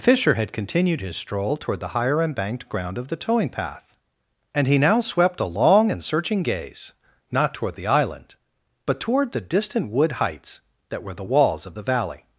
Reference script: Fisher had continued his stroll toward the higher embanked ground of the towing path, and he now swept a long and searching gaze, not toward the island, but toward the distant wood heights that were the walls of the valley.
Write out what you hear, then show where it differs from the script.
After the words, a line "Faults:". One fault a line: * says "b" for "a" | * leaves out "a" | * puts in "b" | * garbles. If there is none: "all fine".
Fisher had continued his stroll toward the higher embanked ground of the towing path, and he now swept a long and searching gaze, not toward the island, but toward the distant wood heights that were the walls of the valley.
Faults:
all fine